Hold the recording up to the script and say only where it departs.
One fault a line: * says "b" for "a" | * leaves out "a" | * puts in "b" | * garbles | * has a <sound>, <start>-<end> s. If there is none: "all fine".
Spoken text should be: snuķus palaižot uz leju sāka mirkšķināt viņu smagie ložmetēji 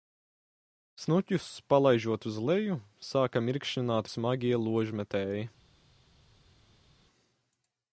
* leaves out "viņu"